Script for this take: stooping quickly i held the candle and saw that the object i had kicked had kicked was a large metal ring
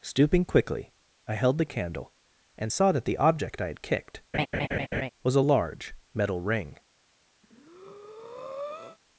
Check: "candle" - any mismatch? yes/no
no